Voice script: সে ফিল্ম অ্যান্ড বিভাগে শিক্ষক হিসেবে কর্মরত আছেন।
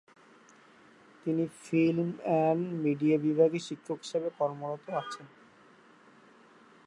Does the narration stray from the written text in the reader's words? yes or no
yes